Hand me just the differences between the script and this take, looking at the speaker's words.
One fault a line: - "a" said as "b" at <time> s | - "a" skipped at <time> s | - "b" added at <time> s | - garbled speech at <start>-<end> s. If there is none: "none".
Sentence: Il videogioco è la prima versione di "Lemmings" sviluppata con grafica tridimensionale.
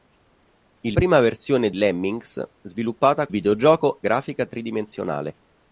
- "videogioco è la" skipped at 1.0 s
- "di" skipped at 1.7 s
- "con" said as "videogioco" at 3.3 s